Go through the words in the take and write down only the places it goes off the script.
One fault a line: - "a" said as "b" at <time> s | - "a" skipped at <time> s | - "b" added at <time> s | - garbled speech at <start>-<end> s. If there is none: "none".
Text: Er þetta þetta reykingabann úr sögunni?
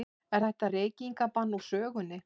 - "þetta" skipped at 0.7 s